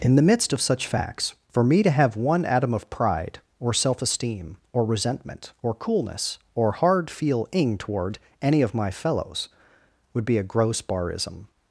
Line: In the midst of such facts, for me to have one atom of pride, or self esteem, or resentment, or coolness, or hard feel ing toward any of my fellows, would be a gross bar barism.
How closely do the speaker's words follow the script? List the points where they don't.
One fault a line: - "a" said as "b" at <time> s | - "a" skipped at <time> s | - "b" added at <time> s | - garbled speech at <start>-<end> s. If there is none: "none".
- "bar" skipped at 10.8 s